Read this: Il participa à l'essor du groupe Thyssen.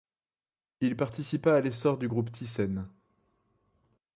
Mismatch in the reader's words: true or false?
false